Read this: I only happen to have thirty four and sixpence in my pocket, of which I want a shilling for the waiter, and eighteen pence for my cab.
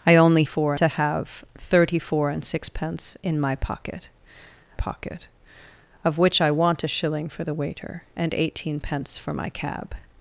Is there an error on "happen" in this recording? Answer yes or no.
yes